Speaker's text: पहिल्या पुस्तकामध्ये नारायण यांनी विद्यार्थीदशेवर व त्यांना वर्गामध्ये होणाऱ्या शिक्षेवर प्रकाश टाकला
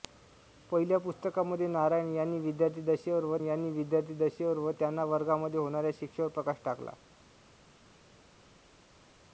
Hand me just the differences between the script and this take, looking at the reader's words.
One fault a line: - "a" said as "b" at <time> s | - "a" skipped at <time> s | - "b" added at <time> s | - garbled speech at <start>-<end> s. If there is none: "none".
- "यांनी विद्यार्थीदशेवर व" added at 3.4 s